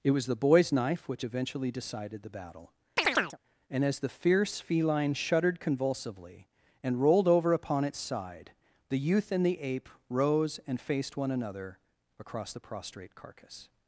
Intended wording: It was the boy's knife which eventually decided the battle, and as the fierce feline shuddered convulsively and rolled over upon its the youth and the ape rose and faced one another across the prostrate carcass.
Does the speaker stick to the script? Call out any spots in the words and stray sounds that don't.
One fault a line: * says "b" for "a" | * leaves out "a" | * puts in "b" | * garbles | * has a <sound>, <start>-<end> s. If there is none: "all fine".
* has a chirp, 3.0-3.4 s
* puts in "side"